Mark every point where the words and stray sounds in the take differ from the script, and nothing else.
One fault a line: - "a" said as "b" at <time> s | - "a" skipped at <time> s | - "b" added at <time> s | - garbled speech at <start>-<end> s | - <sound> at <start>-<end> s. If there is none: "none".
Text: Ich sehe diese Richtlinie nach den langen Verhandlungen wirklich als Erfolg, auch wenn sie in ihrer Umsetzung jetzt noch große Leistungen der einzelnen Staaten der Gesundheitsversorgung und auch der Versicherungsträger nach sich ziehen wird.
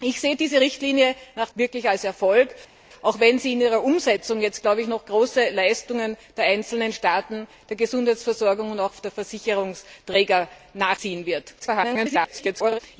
- "den langen Verhandlungen" skipped at 1.5 s
- "sich" skipped at 11.0 s
- garbled speech at 11.6-12.8 s